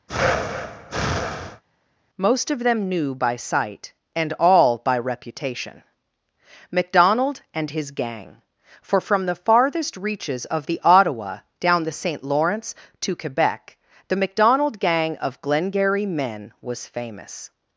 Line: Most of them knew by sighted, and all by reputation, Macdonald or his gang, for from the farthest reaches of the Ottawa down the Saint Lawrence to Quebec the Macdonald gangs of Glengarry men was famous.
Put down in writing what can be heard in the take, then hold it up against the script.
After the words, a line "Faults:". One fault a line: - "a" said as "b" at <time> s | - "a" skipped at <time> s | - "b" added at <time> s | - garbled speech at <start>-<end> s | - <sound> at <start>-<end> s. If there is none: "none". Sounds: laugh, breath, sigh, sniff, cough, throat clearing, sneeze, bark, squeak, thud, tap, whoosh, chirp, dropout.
Most of them knew by sight, and all by reputation, Macdonald and his gang, for from the farthest reaches of the Ottawa down the Saint Lawrence to Quebec the Macdonald gang of Glengarry men was famous.
Faults:
- breath at 0.1-1.6 s
- "sighted" said as "sight" at 3.4 s
- "or" said as "and" at 7.5 s
- "gangs" said as "gang" at 14.8 s